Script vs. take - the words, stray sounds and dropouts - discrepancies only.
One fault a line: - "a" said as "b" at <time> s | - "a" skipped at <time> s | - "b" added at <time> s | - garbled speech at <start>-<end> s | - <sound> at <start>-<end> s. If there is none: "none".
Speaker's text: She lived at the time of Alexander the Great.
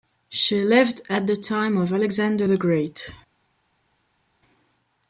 none